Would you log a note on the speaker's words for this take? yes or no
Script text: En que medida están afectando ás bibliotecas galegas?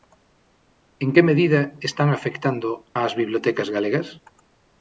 no